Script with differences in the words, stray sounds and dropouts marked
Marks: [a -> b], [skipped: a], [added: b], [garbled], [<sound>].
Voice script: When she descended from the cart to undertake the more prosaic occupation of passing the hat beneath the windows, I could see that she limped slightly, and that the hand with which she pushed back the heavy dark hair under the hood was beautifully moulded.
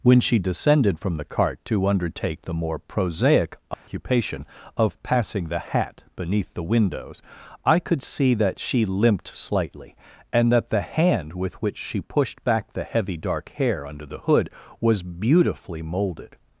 When she descended from the cart to undertake the more prosaic occupation [dropout] of passing the hat beneath the windows, I could see that she limped slightly, and that the hand with which she pushed back the heavy dark hair under the hood was beautifully moulded.